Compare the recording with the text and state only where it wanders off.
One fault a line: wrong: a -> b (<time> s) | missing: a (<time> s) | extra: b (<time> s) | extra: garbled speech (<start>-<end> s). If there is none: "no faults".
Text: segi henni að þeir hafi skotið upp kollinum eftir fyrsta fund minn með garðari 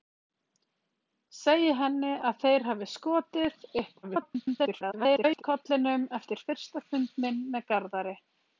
extra: garbled speech (4.0-5.4 s)